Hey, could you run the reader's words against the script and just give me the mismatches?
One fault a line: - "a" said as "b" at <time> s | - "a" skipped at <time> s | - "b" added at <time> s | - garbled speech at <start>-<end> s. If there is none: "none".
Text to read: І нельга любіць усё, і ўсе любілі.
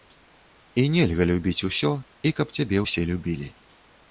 - "каб цябе" added at 2.4 s